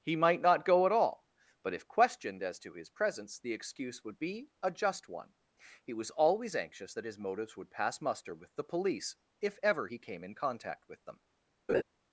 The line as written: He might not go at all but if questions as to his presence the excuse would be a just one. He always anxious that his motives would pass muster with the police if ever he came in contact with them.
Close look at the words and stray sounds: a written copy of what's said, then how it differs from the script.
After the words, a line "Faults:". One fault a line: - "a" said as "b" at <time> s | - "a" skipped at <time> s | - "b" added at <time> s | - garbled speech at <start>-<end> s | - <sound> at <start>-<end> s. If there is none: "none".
He might not go at all but if questioned as to his presence the excuse would be a just one. He was always anxious that his motives would pass muster with the police if ever he came in contact with them.
Faults:
- "questions" said as "questioned" at 1.9 s
- "was" added at 5.9 s
- laugh at 11.7-11.8 s